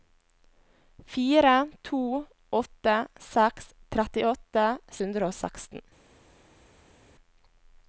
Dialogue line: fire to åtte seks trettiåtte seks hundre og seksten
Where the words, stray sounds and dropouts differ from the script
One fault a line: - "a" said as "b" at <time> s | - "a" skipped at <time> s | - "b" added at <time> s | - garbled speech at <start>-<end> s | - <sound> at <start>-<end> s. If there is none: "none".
- "seks" skipped at 4.7 s